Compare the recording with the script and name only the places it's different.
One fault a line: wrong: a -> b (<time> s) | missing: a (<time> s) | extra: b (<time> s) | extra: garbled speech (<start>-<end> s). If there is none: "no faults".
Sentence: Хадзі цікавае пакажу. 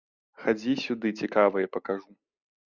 extra: сюды (0.8 s)